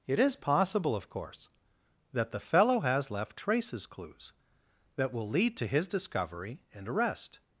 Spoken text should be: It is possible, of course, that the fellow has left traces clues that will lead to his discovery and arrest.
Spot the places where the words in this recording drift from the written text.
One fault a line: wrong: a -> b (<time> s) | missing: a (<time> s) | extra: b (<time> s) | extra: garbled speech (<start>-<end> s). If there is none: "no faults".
no faults